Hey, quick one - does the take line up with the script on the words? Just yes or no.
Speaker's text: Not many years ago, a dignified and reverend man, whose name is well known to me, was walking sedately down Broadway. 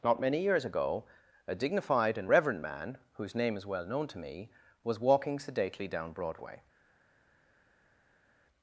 yes